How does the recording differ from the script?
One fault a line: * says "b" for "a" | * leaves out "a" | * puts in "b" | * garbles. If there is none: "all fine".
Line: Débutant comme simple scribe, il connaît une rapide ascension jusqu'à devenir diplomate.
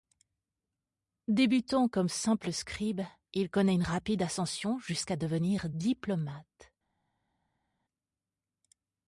all fine